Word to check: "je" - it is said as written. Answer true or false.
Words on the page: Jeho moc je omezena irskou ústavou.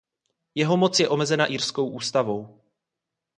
true